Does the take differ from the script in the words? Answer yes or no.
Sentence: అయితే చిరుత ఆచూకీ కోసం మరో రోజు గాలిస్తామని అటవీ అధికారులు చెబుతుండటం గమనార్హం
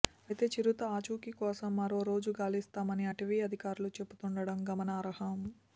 no